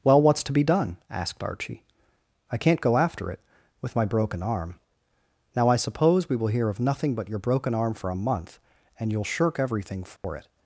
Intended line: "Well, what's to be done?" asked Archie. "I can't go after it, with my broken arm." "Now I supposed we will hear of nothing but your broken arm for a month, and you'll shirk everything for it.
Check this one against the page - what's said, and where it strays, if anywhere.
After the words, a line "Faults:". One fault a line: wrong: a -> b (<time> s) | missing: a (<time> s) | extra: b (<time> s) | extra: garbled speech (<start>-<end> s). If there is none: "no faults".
"Well, what's to be done?" asked Archie. "I can't go after it, with my broken arm." "Now I suppose we will hear of nothing but your broken arm for a month, and you'll shirk everything for it.
Faults:
wrong: supposed -> suppose (5.8 s)